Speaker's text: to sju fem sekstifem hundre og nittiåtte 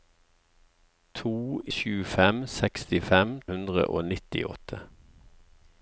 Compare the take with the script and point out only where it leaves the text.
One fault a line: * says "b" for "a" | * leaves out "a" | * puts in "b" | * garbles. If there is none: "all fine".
all fine